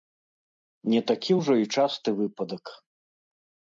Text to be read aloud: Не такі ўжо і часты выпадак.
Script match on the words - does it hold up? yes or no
yes